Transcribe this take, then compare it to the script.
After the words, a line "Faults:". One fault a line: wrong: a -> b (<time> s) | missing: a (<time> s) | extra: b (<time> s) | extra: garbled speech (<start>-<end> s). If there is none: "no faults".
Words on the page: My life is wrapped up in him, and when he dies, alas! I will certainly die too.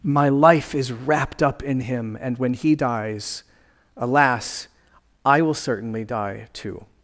My life is wrapped up in him, and when he dies, alas! I will certainly die too.
Faults:
no faults